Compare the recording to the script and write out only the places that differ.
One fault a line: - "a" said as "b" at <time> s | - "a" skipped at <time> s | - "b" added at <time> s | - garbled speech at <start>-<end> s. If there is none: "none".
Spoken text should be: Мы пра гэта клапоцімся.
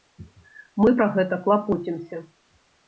none